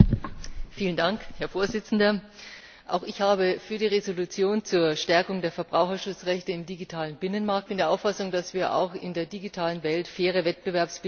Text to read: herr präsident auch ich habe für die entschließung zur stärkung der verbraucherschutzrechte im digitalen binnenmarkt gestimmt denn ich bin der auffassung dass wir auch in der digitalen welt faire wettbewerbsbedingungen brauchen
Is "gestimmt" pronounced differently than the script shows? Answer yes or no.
yes